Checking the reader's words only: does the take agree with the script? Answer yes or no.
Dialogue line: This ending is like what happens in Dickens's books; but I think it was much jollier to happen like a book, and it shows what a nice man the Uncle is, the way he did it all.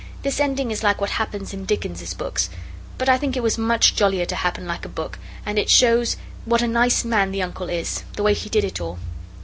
yes